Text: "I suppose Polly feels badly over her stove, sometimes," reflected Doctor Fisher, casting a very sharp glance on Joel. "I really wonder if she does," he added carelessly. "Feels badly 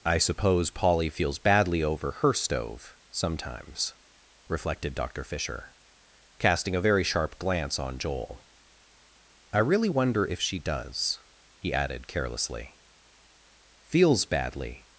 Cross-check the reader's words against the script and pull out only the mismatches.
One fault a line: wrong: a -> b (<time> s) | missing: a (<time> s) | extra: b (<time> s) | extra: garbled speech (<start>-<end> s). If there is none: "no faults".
no faults